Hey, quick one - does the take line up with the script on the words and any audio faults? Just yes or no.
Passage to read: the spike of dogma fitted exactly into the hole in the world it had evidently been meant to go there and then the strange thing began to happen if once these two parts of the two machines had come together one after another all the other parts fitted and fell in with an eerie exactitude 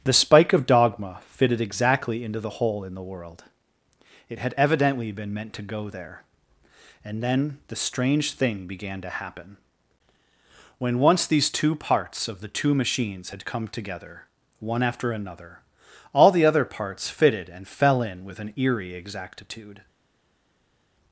no